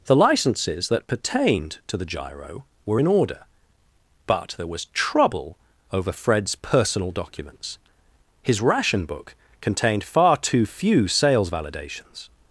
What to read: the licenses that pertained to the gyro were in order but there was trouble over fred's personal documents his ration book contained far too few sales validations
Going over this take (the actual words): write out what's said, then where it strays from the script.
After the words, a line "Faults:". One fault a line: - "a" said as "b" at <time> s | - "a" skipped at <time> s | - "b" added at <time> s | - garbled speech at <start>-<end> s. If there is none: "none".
the licenses that pertained to the gyro were in order but there was trouble over fred's personal documents his ration book contained far too few sales validations
Faults:
none